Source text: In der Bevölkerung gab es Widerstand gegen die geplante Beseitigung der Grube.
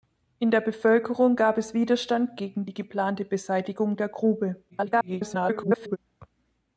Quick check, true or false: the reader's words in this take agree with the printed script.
false